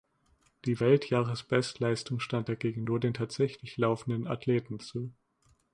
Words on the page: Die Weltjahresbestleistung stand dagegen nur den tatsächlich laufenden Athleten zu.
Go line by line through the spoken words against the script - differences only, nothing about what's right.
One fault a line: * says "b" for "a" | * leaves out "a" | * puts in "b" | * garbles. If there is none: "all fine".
all fine